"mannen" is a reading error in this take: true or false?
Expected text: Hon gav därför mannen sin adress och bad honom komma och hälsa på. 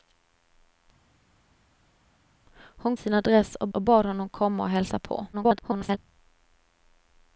true